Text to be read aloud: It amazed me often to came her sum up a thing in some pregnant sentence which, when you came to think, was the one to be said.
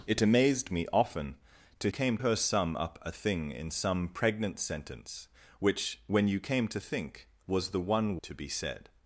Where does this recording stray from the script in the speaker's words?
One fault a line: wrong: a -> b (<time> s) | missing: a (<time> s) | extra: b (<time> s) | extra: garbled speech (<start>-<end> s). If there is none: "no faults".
no faults